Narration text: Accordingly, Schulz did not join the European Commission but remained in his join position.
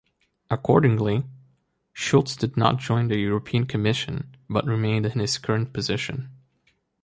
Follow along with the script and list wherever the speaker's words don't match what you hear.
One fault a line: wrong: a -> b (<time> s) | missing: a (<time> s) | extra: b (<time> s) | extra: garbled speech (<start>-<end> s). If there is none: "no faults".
wrong: join -> current (5.4 s)